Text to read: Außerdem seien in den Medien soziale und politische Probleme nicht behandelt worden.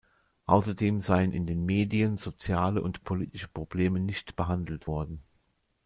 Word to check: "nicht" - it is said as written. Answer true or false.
true